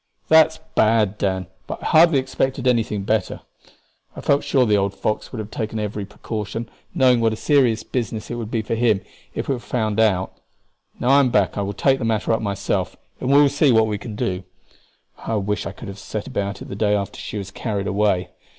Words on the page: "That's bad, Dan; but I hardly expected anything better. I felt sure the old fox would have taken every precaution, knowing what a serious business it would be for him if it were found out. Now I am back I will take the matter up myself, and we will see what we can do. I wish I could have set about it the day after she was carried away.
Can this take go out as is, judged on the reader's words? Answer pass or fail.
pass